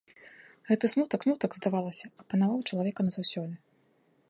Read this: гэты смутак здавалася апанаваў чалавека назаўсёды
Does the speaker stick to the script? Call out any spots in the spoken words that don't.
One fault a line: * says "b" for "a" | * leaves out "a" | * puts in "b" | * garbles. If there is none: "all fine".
* puts in "смутак"